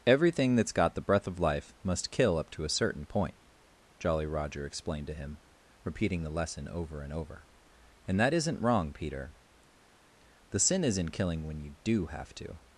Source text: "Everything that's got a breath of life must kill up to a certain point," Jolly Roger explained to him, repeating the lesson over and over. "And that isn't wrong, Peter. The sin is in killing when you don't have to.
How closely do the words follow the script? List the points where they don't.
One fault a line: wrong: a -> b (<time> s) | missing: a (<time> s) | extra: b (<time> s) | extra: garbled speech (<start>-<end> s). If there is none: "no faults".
wrong: a -> the (0.9 s)
wrong: don't -> do (11.8 s)